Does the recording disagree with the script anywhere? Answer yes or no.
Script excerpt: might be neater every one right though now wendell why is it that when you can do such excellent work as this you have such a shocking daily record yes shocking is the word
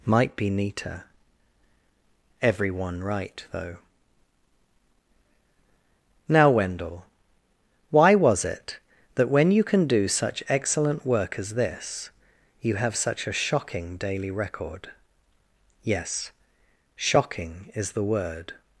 yes